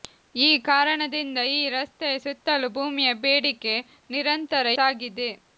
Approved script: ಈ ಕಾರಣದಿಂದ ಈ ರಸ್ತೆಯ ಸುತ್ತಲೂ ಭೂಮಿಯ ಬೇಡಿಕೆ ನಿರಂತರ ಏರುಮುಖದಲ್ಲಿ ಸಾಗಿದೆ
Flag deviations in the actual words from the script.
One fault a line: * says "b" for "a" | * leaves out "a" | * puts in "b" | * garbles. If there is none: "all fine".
* leaves out "ಏರುಮುಖದಲ್ಲಿ"